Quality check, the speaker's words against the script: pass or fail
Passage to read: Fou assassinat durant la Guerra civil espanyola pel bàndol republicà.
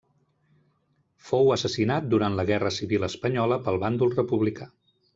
pass